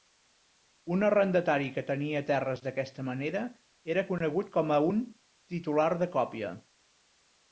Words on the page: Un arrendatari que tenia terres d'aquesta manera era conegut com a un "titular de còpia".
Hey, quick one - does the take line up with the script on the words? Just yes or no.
yes